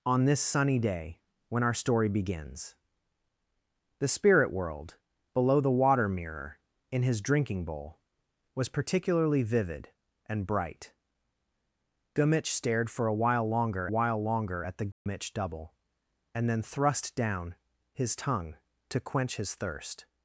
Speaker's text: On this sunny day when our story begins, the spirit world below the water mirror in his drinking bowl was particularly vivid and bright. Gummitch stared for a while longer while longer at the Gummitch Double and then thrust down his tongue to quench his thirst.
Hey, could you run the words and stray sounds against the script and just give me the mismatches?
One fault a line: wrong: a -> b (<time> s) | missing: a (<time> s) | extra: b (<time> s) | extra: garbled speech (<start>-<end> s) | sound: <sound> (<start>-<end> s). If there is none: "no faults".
sound: dropout (14.9-15.1 s)